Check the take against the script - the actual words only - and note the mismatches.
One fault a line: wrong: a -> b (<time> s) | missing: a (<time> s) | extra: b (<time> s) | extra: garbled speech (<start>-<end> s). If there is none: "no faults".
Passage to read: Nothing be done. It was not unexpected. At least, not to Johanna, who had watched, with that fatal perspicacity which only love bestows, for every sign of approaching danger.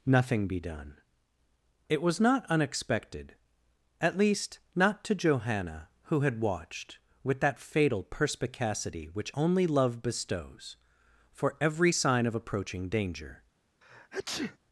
no faults